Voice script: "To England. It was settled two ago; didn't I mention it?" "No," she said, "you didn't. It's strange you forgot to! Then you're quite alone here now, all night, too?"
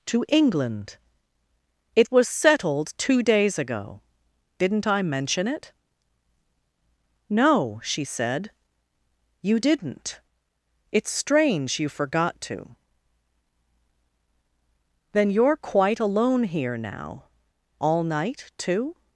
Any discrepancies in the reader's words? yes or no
yes